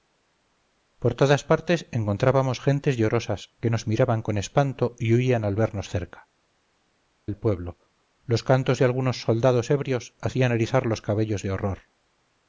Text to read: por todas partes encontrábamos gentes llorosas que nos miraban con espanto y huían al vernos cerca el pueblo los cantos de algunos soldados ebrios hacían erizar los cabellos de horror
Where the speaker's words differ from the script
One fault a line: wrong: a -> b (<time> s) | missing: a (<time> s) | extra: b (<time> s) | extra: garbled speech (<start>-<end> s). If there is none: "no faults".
no faults